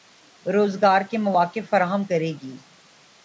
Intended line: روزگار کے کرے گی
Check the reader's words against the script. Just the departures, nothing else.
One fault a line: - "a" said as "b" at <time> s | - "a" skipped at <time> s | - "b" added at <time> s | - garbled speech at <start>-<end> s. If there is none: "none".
- "مواقع فراہم" added at 1.2 s